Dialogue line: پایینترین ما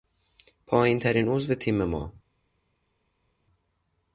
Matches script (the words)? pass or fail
fail